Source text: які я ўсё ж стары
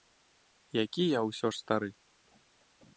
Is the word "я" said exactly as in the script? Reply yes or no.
yes